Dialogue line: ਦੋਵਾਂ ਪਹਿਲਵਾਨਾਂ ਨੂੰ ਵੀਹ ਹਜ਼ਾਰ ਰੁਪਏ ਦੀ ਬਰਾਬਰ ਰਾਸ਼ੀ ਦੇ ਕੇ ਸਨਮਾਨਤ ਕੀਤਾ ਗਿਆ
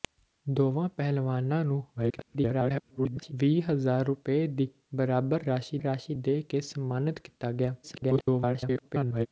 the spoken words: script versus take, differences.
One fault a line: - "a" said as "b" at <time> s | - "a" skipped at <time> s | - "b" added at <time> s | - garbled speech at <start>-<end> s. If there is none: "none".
- garbled speech at 2.0-3.3 s
- "ਰਾਸ਼ੀ" added at 5.8 s
- garbled speech at 7.8-9.3 s